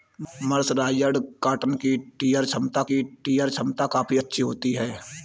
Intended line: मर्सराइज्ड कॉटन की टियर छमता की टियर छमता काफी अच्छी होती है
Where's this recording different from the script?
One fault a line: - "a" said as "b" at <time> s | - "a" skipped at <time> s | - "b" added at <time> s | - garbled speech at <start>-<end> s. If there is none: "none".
none